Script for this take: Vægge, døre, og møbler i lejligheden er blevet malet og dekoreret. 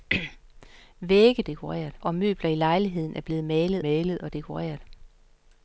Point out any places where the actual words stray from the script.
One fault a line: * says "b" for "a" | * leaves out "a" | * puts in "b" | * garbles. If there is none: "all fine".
* says "dekoreret" for "døre"
* puts in "malet"